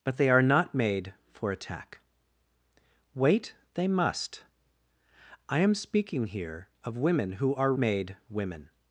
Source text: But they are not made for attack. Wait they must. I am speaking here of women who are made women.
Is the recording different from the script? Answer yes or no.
no